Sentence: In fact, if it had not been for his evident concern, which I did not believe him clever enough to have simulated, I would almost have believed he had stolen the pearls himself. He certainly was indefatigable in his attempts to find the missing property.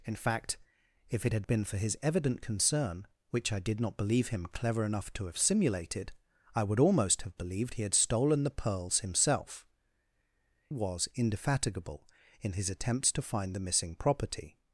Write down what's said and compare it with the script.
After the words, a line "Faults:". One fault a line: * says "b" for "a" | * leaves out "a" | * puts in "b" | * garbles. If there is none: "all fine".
In fact, if it had been for his evident concern, which I did not believe him clever enough to have simulated, I would almost have believed he had stolen the pearls himself. Was indefatigable in his attempts to find the missing property.
Faults:
* leaves out "not"
* leaves out "He certainly"